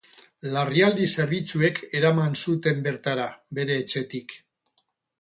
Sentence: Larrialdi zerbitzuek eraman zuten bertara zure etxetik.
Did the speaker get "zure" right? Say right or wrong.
wrong